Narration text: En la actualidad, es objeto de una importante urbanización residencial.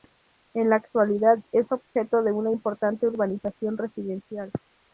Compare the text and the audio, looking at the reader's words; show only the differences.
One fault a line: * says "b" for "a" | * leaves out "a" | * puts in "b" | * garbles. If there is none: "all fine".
all fine